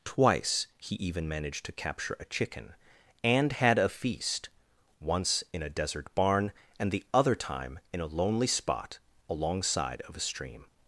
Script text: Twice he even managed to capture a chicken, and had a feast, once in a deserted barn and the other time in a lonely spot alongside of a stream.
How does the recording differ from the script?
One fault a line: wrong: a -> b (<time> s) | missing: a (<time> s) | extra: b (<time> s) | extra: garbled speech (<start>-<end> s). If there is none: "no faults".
wrong: deserted -> desert (5.7 s)